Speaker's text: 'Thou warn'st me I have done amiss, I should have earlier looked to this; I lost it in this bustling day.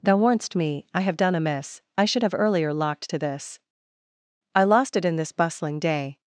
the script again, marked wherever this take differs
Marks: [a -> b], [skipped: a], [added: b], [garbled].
'Thou warn'st me I have done amiss, I should have earlier [looked -> locked] to this; I lost it in this bustling day.